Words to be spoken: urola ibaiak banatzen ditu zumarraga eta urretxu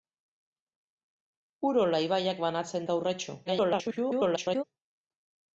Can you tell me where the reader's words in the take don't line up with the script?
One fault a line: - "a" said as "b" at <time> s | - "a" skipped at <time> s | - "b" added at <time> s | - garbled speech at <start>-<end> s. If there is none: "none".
- "ditu zumarraga" skipped at 2.9 s
- garbled speech at 3.4-4.6 s